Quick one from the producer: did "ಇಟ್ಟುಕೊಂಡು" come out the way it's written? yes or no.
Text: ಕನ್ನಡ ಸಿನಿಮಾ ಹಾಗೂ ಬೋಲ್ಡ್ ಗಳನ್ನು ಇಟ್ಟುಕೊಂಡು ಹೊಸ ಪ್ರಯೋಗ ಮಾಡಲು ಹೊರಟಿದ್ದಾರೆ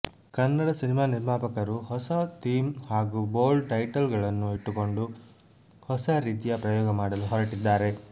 yes